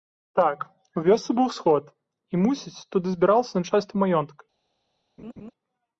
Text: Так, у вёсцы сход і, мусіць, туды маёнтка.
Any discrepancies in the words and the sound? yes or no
yes